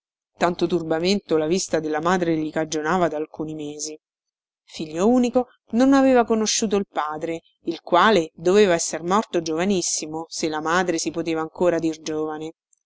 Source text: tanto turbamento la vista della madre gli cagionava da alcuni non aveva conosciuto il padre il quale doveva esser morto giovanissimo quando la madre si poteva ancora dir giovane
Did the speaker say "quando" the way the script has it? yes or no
no